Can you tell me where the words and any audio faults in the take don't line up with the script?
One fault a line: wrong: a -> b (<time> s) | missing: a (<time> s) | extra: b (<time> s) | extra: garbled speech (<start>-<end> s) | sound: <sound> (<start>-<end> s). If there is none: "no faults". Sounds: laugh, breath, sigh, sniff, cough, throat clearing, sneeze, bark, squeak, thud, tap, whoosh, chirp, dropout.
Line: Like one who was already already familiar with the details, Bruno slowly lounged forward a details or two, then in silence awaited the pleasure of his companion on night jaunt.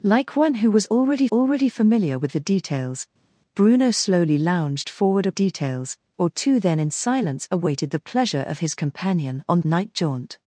no faults